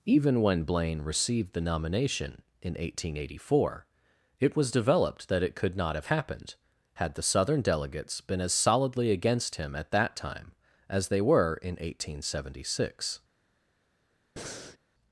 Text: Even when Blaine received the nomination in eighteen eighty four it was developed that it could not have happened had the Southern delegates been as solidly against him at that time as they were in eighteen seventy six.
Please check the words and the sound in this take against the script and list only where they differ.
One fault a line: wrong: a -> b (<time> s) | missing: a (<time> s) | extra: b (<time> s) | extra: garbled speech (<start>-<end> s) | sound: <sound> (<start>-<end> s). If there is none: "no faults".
sound: breath (14.4-14.8 s)